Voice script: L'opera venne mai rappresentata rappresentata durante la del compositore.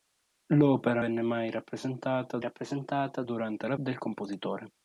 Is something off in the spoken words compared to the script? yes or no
no